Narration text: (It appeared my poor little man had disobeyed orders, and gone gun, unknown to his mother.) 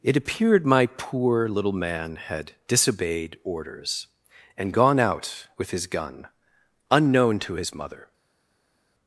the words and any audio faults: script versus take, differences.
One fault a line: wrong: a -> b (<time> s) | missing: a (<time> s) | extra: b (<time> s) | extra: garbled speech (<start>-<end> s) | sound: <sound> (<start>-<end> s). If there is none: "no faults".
extra: out with his (5.0 s)